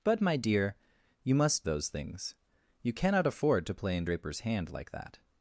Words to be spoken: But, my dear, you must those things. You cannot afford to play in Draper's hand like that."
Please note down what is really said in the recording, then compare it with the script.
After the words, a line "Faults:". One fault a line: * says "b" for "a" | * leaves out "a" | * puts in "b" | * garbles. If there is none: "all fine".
But, my dear, you must those things. You cannot afford to play in Draper's hand like that."
Faults:
all fine